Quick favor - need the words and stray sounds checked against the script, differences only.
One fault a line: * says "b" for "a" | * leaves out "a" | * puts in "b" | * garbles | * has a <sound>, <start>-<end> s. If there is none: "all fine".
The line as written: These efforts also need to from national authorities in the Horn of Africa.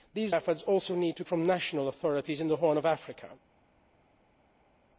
all fine